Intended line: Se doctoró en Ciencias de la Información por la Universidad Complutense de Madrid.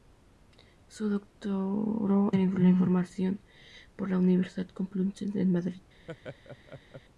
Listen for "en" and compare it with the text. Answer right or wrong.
wrong